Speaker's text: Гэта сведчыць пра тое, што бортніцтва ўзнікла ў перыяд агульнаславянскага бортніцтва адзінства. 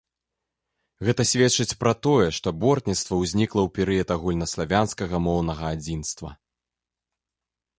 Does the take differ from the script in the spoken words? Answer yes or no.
yes